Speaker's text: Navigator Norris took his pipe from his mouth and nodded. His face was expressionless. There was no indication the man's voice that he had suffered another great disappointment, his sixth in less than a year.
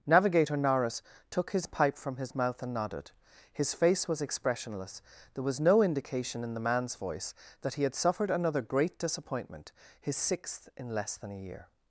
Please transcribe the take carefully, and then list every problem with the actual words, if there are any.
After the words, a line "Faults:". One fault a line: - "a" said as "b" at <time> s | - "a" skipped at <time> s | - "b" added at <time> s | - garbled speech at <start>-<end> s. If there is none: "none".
Navigator Norris took his pipe from his mouth and nodded. His face was expressionless. There was no indication in the man's voice that he had suffered another great disappointment, his sixth in less than a year.
Faults:
- "in" added at 6.4 s